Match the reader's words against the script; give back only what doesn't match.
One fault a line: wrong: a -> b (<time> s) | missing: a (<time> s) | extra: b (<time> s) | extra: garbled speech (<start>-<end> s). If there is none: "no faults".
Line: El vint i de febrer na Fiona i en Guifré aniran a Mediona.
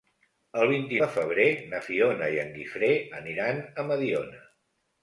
no faults